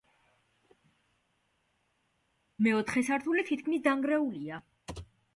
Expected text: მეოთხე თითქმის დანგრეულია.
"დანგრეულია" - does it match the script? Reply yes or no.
yes